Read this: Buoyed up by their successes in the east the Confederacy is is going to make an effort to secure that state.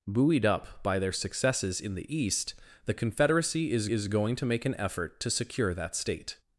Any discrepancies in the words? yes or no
no